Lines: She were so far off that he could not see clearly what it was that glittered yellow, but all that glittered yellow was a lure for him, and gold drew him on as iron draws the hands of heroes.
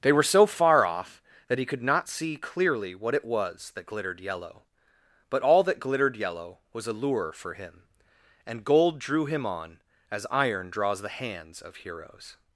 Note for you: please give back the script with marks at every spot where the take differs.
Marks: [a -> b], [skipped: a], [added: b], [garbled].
[She -> They] were so far off that he could not see clearly what it was that glittered yellow, but all that glittered yellow was a lure for him, and gold drew him on as iron draws the hands of heroes.